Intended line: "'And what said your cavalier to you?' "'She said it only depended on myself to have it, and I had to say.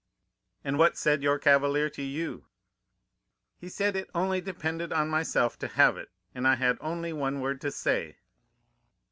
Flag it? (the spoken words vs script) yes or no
yes